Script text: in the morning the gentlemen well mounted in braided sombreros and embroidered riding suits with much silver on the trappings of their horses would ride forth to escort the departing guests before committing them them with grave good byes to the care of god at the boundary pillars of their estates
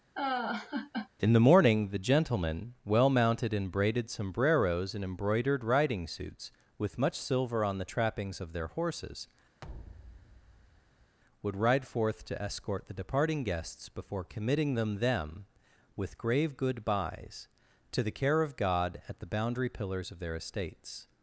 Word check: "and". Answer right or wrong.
right